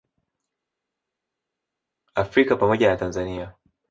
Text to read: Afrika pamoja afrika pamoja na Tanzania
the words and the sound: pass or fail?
fail